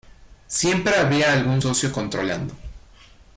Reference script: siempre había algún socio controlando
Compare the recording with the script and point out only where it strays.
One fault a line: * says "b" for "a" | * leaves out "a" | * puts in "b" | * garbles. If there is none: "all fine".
all fine